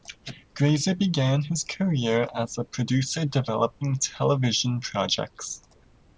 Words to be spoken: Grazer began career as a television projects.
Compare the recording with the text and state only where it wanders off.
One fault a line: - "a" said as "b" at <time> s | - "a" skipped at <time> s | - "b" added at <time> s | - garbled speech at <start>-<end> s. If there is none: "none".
- "his" added at 1.4 s
- "producer developing" added at 2.6 s